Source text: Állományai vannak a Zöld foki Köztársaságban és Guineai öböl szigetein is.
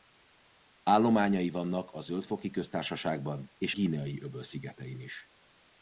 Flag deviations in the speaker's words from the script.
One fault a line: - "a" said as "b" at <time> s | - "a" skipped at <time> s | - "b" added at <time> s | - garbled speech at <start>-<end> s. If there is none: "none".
none